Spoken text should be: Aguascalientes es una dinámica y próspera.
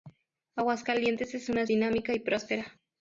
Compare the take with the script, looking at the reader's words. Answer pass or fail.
pass